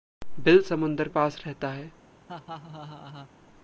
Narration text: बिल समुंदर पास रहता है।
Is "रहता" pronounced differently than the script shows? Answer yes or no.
no